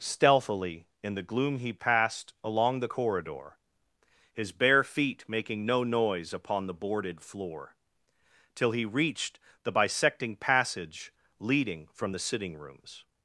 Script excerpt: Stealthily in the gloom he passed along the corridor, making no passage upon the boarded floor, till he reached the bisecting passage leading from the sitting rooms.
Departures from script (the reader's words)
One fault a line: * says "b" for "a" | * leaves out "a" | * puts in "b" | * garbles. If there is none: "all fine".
* puts in "his bare feet"
* says "noise" for "passage"